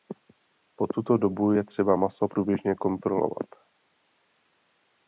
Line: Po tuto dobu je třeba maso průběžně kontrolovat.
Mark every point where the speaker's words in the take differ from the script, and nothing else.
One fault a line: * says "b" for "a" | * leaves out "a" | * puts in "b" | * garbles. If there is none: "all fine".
all fine